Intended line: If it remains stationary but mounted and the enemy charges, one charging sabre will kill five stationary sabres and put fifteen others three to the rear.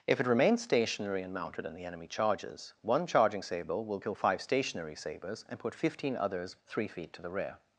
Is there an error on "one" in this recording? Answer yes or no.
no